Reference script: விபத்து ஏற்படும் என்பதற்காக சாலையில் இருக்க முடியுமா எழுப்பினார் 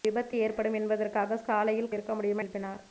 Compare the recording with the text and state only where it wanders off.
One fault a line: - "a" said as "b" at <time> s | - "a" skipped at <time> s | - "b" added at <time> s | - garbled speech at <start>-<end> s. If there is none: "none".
none